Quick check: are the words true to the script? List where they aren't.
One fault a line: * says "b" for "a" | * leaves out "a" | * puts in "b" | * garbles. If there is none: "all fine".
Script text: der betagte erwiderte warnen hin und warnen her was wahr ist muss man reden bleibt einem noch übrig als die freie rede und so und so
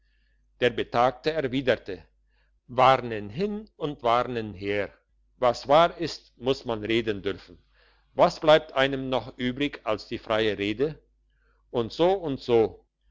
* puts in "dürfen was"